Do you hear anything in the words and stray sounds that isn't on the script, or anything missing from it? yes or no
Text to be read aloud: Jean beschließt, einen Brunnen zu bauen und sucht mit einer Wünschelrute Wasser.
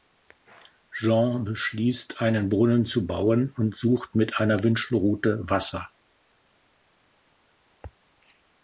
no